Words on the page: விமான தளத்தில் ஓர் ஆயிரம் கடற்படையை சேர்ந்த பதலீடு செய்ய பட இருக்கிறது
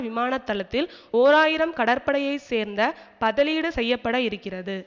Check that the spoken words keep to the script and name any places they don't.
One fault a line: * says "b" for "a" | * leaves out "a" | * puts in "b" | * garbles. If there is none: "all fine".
all fine